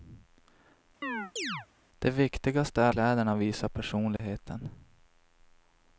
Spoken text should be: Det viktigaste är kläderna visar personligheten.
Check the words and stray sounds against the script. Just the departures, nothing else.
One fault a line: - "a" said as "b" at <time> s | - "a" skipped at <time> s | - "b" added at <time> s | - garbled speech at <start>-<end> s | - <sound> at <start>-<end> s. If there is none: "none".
- chirp at 1.0-1.7 s
- dropout at 4.2-4.2 s